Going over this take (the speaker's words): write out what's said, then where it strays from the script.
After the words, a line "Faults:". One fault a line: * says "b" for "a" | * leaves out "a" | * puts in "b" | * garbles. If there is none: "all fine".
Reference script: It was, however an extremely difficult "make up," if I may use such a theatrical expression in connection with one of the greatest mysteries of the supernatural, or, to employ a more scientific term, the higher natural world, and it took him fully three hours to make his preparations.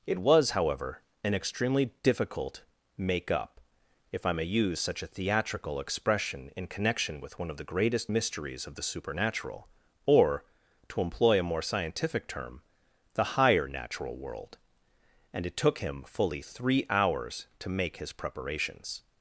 It was, however an extremely difficult "make up," if I may use such a theatrical expression in connection with one of the greatest mysteries of the supernatural, or, to employ a more scientific term, the higher natural world, and it took him fully three hours to make his preparations.
Faults:
all fine